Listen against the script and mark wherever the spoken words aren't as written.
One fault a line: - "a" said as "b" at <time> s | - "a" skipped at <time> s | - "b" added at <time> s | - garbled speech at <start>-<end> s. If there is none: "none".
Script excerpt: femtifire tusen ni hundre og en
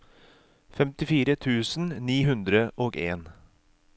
none